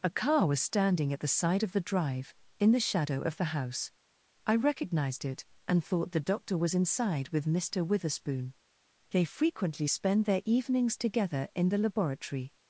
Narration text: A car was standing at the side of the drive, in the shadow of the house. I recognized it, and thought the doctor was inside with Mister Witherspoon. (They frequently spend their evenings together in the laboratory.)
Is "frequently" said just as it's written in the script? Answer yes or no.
yes